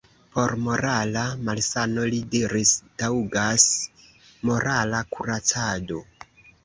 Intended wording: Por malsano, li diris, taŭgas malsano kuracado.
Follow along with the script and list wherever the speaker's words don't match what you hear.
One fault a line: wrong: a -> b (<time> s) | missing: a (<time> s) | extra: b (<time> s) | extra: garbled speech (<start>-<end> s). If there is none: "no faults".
extra: morala (0.7 s)
wrong: malsano -> morala (4.5 s)